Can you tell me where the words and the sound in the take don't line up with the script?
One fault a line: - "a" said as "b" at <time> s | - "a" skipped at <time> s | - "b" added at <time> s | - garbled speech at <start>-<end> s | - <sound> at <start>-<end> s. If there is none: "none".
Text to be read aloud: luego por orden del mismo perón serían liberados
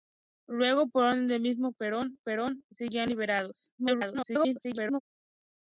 - "perón" added at 2.2 s
- garbled speech at 3.8-5.0 s